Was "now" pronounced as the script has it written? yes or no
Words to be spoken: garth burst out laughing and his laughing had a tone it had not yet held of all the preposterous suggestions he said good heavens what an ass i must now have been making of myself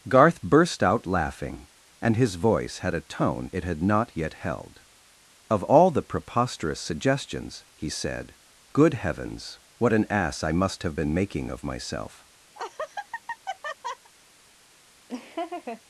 no